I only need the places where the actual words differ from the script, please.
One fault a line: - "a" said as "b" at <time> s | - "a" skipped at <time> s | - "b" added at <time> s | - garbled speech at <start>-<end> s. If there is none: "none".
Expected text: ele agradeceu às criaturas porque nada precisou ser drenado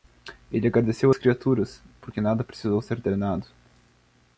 none